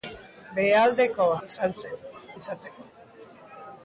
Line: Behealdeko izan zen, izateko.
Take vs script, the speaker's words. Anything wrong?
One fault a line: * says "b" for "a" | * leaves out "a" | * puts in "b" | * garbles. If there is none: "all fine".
all fine